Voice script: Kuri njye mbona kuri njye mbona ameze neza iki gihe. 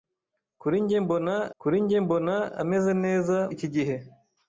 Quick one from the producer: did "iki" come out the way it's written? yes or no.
yes